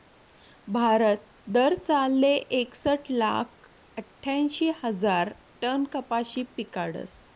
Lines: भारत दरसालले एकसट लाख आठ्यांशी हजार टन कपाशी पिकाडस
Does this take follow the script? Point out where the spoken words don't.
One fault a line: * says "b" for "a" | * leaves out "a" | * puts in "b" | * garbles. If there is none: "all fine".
all fine